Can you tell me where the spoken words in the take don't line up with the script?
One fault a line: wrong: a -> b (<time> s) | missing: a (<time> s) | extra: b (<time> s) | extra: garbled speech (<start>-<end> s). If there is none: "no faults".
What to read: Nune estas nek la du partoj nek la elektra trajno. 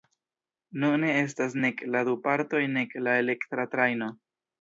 no faults